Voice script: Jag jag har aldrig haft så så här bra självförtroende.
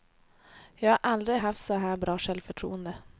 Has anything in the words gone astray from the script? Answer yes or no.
yes